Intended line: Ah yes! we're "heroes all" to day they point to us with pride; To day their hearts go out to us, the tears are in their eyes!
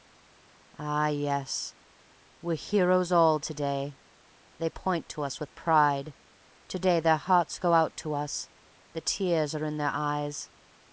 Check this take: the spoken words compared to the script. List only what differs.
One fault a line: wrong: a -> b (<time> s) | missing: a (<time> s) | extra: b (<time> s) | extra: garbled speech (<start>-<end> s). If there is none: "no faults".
no faults